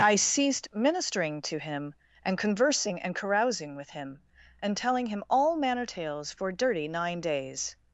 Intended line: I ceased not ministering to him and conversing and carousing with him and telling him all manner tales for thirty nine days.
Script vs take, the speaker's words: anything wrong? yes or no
yes